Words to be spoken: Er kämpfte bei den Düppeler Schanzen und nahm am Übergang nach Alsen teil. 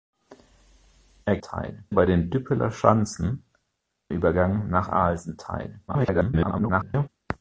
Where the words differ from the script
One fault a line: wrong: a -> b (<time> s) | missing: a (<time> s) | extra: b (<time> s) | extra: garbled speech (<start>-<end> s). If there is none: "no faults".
wrong: kämpfte -> teil (1.4 s)
missing: und nahm am (3.4 s)
extra: garbled speech (5.9-7.1 s)